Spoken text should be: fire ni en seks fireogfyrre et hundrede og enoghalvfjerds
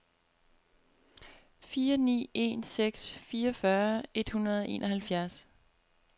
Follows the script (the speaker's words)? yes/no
yes